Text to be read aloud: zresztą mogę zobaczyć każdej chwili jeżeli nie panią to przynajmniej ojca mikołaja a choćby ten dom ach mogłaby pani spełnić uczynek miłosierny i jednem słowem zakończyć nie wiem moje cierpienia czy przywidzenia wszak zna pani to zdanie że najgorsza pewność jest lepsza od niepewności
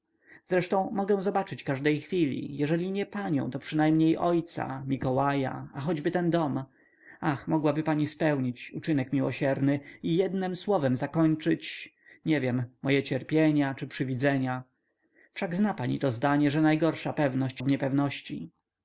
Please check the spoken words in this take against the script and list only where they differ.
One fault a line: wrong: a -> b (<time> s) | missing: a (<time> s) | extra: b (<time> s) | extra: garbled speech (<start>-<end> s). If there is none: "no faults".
missing: jest lepsza (17.6 s)